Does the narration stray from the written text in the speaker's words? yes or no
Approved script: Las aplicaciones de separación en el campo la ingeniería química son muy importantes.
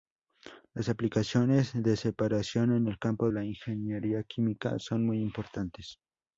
no